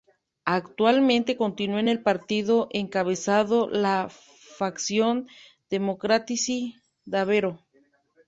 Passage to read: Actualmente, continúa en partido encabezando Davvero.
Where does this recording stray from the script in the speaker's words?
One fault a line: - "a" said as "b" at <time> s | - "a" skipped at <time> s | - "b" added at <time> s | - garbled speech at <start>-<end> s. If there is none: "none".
- "el" added at 1.9 s
- "la facción Democratici" added at 3.7 s